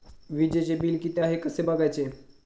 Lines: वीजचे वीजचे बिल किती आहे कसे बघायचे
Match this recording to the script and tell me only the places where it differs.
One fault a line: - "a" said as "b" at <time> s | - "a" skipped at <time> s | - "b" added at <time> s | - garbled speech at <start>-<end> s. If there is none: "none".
- "वीजचे" skipped at 0.8 s